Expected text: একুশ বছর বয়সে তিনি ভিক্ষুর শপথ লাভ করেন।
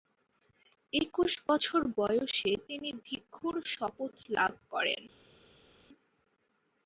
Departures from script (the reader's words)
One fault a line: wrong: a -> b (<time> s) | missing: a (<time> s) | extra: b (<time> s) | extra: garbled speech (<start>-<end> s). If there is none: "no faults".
no faults